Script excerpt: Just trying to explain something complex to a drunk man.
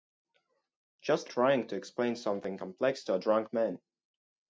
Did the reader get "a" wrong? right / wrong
right